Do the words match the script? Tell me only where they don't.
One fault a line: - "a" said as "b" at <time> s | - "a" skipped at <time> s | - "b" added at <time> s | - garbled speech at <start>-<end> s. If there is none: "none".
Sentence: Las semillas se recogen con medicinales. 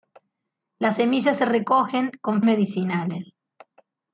none